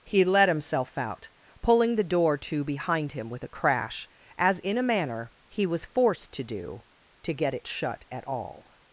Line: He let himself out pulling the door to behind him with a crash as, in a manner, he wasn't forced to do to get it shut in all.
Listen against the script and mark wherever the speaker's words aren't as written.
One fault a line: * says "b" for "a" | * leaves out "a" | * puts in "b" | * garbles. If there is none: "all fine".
* says "was" for "wasn't"
* says "at" for "in"